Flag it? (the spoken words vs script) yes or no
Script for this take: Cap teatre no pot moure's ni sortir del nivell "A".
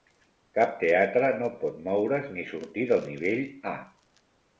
no